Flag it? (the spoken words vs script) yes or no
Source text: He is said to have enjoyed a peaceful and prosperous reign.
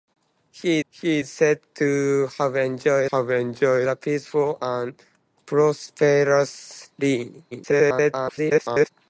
yes